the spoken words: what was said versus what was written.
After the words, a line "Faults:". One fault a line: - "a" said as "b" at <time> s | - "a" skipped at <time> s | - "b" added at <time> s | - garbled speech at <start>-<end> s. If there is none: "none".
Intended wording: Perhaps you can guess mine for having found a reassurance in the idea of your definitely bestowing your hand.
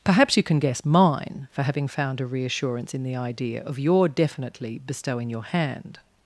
Perhaps you can guess mine for having found a reassurance in the idea of your definitely bestowing your hand.
Faults:
none